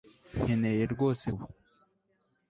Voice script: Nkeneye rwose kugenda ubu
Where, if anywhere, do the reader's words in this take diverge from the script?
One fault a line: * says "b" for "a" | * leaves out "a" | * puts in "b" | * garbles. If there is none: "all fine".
* leaves out "kugenda"